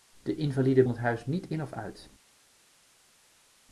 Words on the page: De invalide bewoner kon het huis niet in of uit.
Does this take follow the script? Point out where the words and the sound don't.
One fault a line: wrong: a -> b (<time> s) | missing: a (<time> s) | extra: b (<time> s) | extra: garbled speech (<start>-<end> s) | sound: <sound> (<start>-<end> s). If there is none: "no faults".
missing: bewoner kon (0.8 s)